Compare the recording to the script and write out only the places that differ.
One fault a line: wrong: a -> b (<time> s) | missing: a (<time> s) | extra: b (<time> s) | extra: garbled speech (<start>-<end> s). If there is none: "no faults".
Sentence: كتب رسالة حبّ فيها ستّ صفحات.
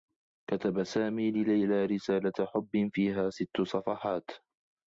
extra: سامي لليلى (0.8 s)